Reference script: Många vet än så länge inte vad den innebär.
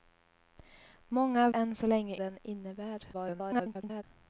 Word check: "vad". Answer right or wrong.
wrong